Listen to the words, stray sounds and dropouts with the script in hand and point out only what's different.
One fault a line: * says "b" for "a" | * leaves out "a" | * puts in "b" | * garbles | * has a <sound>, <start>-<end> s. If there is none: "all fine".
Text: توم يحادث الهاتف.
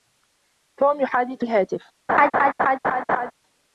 * has a laugh, 2.1-3.3 s